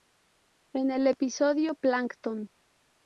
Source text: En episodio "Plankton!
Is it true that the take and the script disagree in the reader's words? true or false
true